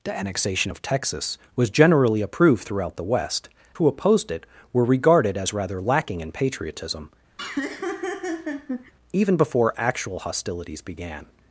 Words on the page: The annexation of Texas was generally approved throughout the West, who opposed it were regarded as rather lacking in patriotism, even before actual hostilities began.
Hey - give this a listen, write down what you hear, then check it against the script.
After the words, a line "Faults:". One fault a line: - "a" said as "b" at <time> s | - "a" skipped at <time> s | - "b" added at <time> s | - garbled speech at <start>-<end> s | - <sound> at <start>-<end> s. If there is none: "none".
The annexation of Texas was generally approved throughout the West, who opposed it were regarded as rather lacking in patriotism, even before actual hostilities began.
Faults:
- laugh at 7.4-8.9 s